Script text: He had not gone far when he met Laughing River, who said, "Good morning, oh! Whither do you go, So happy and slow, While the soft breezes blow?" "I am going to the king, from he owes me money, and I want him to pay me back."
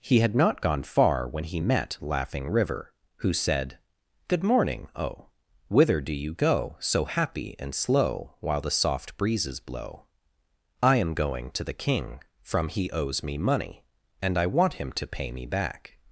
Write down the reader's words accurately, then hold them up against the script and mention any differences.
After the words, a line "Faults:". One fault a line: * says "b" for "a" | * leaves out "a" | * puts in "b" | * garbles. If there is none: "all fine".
He had not gone far when he met Laughing River, who said, "Good morning, oh! Whither do you go, So happy and slow, While the soft breezes blow?" "I am going to the king, from he owes me money, and I want him to pay me back."
Faults:
all fine